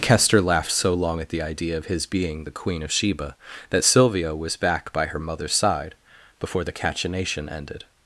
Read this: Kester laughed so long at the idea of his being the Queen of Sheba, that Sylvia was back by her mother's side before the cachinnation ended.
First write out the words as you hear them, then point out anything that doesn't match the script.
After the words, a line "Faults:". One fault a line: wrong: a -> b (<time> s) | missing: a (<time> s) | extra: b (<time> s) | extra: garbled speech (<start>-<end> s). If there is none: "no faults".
Kester laughed so long at the idea of his being the Queen of Sheba, that Sylvia was back by her mother's side before the cachinnation ended.
Faults:
no faults